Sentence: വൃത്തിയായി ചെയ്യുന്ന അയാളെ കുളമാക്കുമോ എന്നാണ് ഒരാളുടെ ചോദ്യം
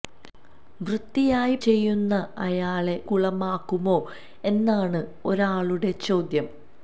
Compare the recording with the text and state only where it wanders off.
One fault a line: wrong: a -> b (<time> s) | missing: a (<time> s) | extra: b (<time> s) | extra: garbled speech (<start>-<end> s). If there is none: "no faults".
no faults